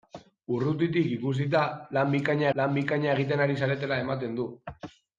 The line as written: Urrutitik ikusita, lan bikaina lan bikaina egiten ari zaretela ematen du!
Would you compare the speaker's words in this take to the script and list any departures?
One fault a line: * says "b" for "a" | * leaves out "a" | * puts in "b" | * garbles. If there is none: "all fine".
all fine